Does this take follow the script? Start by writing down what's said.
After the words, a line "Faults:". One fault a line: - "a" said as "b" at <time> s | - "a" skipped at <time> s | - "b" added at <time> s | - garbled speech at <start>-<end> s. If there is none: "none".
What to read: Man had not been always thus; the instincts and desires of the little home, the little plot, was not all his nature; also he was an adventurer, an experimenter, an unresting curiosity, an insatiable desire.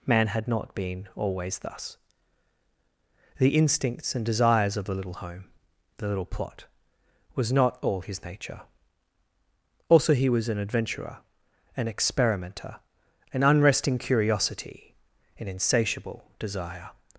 Man had not been always thus; the instincts and desires of the little home, the little plot, was not all his nature; also he was an adventurer, an experimenter, an unresting curiosity, an insatiable desire.
Faults:
none